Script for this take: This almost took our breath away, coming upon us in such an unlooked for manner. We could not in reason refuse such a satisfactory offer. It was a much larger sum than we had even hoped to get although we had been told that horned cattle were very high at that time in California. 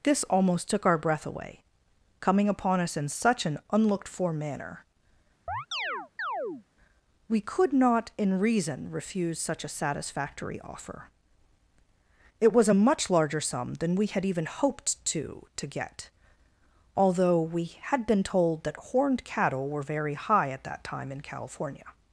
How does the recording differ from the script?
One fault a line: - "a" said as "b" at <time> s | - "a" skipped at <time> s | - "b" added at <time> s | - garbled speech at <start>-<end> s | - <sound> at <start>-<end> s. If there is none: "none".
- chirp at 5.5-6.6 s
- "to" added at 15.6 s